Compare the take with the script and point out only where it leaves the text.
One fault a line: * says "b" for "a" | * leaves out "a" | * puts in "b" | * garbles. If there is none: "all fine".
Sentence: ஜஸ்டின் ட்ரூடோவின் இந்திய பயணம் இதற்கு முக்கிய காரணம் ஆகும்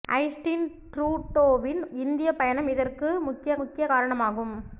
* puts in "முக்கிய"